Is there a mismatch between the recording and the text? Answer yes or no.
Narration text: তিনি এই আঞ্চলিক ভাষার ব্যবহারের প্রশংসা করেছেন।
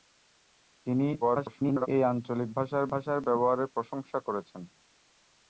yes